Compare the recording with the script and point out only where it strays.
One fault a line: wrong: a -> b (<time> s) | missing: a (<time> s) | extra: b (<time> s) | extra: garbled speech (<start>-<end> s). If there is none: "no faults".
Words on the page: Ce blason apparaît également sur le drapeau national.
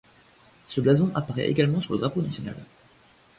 no faults